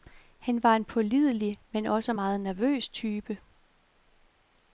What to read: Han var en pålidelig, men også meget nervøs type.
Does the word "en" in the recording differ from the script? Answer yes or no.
no